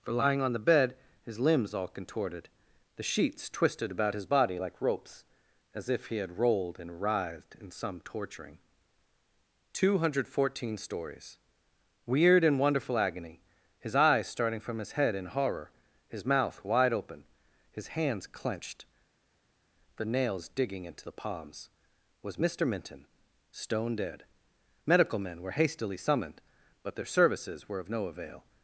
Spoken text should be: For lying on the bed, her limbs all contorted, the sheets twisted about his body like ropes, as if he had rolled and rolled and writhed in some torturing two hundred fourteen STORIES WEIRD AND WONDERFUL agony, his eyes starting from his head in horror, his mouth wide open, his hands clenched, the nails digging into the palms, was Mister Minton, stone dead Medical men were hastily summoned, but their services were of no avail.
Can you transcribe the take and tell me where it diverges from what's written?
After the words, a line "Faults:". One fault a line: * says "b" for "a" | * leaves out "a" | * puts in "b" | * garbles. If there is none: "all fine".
For lying on the bed, his limbs all contorted, the sheets twisted about his body like ropes, as if he had rolled and writhed in some torturing two hundred fourteen STORIES WEIRD AND WONDERFUL agony, his eyes starting from his head in horror, his mouth wide open, his hands clenched, the nails digging into the palms, was Mister Minton, stone dead Medical men were hastily summoned, but their services were of no avail.
Faults:
* says "his" for "her"
* leaves out "rolled and"